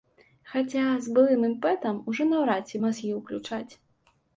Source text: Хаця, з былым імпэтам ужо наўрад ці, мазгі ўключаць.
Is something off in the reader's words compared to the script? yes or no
no